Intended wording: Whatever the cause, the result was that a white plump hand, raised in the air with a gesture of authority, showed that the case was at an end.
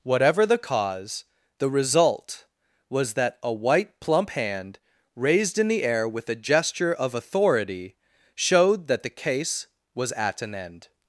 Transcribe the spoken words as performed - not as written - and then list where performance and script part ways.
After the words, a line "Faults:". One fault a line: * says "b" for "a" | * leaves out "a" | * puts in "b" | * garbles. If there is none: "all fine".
Whatever the cause, the result was that a white plump hand, raised in the air with a gesture of authority, showed that the case was at an end.
Faults:
all fine